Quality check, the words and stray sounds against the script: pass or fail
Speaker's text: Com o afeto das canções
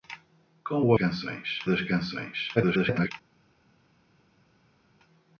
fail